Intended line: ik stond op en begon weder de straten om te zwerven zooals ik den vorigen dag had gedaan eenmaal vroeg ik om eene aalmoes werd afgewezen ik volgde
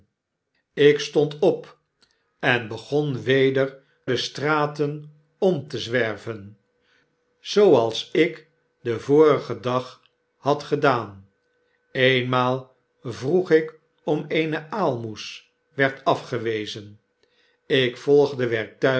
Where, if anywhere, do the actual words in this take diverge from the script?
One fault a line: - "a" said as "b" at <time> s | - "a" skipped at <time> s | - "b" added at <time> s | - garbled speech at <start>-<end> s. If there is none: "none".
none